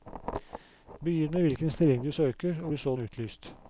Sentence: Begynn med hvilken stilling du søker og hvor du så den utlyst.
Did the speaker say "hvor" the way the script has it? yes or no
no